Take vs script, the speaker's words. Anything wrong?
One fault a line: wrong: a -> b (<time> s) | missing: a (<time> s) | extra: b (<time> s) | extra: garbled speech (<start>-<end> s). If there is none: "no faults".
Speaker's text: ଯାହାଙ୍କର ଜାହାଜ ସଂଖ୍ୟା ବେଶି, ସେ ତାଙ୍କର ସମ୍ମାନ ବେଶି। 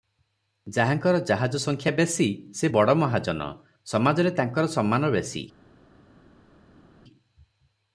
extra: ବଡ଼ ମହାଜନ ସମାଜରେ (2.7 s)